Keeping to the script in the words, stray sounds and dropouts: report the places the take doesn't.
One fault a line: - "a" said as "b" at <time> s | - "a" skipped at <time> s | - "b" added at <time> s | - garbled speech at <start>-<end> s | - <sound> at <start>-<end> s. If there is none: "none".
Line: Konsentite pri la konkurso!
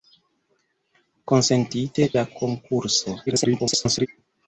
- "pri" skipped at 2.1 s
- garbled speech at 3.3-4.1 s